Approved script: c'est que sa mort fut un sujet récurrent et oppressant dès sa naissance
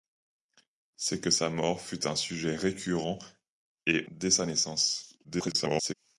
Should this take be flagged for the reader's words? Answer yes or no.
yes